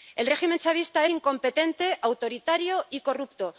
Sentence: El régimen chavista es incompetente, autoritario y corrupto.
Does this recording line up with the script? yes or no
no